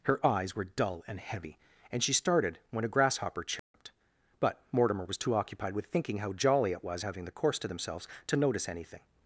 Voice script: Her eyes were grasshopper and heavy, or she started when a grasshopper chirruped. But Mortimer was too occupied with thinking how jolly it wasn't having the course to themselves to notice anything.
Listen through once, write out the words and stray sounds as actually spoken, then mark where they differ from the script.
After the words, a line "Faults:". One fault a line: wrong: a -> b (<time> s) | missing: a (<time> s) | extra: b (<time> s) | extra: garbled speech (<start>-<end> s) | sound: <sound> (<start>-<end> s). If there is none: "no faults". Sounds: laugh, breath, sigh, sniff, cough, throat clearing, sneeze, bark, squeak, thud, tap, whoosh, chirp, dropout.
Her eyes were dull and heavy, and she started when a grasshopper chirruped. But Mortimer was too occupied with thinking how jolly it was having the course to themselves to notice anything.
Faults:
wrong: grasshopper -> dull (0.6 s)
wrong: or -> and (1.9 s)
sound: dropout (3.6-3.7 s)
wrong: wasn't -> was (6.8 s)